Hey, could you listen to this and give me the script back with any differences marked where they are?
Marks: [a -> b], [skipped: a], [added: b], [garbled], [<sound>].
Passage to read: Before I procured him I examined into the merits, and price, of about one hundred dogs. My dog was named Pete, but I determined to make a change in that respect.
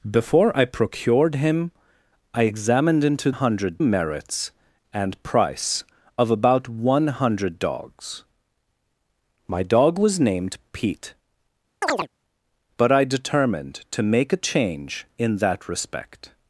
Before I procured him I examined into [the -> hundred] merits, and price, of about one hundred dogs. My dog was named Pete, [chirp] but I determined to make a change in that respect.